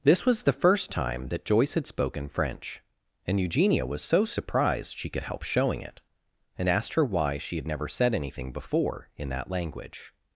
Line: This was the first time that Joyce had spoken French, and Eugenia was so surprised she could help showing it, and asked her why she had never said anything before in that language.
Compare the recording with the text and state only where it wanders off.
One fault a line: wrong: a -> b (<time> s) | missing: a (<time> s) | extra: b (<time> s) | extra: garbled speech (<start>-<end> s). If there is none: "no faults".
no faults